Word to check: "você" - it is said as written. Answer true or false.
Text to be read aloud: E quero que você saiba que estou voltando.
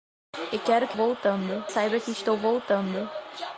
false